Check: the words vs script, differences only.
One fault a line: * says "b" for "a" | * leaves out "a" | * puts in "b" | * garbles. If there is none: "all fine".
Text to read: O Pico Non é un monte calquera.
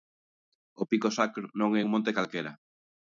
* puts in "Sacro"